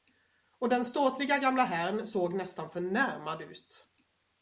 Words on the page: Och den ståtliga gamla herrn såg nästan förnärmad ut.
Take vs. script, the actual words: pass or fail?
pass